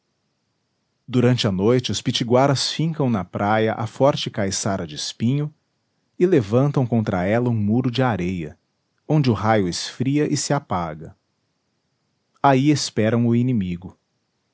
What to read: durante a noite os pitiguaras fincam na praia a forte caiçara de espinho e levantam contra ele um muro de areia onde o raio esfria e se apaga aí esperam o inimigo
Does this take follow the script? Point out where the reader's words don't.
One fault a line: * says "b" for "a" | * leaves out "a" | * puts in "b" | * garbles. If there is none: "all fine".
* says "ela" for "ele"